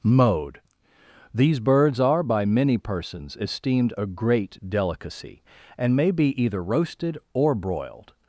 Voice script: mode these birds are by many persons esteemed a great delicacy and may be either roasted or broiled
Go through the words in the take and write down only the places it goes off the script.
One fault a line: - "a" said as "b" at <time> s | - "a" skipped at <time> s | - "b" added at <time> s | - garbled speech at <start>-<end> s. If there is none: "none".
none